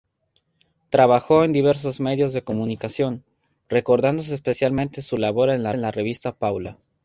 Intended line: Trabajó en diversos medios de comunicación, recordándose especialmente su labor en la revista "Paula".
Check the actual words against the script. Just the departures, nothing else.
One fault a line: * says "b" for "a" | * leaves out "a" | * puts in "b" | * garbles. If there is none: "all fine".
* puts in "en la"